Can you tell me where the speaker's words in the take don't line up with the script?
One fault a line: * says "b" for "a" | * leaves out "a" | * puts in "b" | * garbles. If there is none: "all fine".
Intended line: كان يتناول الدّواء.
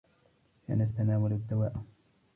all fine